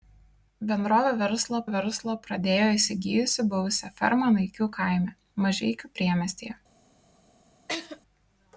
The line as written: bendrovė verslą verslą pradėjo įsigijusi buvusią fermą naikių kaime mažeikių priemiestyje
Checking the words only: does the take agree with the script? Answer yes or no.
yes